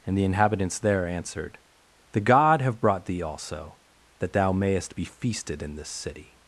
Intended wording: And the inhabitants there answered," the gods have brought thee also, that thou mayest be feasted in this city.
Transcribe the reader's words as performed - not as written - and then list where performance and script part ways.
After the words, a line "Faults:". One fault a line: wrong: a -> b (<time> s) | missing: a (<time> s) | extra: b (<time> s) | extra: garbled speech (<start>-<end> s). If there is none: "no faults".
And the inhabitants there answered," the god have brought thee also, that thou mayest be feasted in this city.
Faults:
wrong: gods -> god (2.2 s)